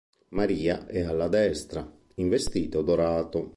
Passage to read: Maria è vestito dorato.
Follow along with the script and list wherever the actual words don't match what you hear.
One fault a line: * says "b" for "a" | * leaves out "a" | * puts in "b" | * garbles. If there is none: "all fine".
* puts in "alla destra in"